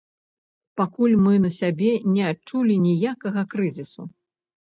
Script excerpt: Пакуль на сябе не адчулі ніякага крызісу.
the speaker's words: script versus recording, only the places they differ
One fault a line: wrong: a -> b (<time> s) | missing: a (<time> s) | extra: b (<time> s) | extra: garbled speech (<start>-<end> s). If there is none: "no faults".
extra: мы (1.2 s)